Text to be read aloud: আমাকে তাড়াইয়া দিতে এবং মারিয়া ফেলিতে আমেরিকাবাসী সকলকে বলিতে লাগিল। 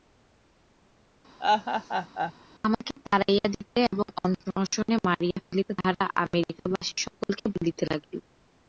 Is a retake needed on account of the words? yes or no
yes